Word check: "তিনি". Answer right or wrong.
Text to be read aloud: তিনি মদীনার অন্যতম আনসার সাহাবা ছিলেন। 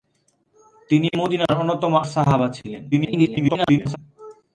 right